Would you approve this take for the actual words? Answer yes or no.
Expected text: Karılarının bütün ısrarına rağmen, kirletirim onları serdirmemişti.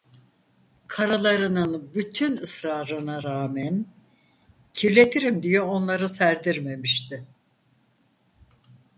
no